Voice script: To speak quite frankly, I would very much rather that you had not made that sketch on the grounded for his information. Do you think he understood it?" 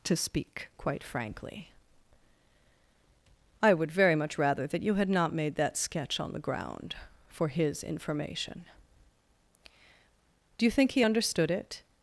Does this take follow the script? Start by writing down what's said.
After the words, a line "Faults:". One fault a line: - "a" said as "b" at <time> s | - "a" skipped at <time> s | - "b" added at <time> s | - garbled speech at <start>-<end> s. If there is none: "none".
To speak quite frankly, I would very much rather that you had not made that sketch on the ground for his information. Do you think he understood it?"
Faults:
- "grounded" said as "ground" at 6.4 s